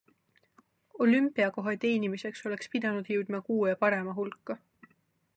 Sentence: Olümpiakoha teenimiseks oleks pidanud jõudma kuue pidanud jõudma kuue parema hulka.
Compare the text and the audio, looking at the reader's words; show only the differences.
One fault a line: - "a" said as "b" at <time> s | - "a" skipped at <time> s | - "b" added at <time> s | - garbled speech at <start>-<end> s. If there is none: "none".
- "pidanud jõudma kuue" skipped at 3.7 s